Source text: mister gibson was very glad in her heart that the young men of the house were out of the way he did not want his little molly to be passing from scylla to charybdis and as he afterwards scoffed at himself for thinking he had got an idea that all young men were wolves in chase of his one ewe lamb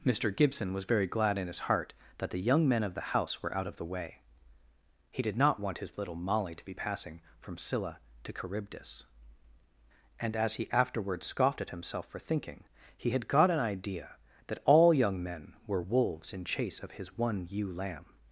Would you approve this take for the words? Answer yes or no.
no